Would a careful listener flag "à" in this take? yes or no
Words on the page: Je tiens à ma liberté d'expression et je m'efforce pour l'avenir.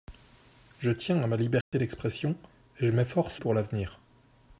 no